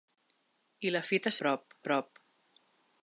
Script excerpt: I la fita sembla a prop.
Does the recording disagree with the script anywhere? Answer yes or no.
yes